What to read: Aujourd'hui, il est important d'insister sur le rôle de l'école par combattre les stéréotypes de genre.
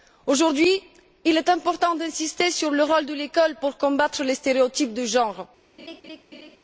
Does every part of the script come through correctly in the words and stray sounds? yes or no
no